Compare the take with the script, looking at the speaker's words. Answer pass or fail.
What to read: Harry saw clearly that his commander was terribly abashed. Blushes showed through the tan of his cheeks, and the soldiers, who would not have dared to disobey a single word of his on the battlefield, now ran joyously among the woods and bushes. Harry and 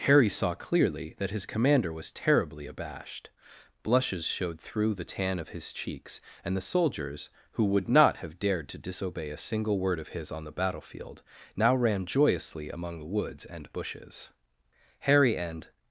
pass